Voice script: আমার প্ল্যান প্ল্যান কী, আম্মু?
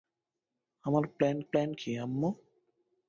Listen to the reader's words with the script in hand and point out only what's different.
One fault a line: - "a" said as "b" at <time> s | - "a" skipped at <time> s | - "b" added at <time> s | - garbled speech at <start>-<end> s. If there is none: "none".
none